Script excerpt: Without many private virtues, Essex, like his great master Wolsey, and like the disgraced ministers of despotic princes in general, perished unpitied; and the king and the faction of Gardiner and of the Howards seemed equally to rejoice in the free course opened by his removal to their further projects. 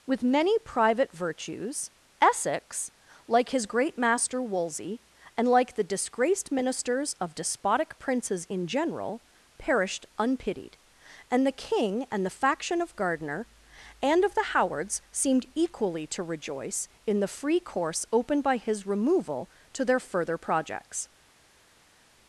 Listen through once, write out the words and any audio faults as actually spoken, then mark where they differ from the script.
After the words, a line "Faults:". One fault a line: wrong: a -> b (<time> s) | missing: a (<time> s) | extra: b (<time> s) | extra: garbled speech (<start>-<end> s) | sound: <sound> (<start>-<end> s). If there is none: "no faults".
With many private virtues, Essex, like his great master Wolsey, and like the disgraced ministers of despotic princes in general, perished unpitied; and the king and the faction of Gardiner and of the Howards seemed equally to rejoice in the free course opened by his removal to their further projects.
Faults:
wrong: Without -> With (0.1 s)